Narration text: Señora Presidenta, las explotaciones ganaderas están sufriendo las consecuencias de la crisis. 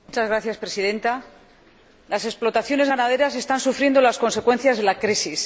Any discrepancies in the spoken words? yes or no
no